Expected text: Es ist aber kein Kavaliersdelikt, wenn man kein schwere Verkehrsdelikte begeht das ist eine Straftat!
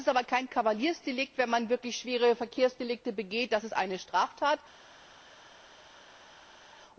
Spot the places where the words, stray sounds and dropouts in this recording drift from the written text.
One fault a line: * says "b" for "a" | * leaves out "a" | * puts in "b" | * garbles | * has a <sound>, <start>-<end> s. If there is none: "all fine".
* says "wirklich" for "kein"